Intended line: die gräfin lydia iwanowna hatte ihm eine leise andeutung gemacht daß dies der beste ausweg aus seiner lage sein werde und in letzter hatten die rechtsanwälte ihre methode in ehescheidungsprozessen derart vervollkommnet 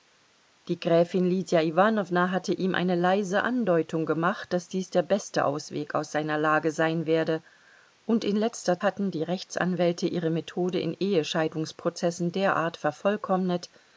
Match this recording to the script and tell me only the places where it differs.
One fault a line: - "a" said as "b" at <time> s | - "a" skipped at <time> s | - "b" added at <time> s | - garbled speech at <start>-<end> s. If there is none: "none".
none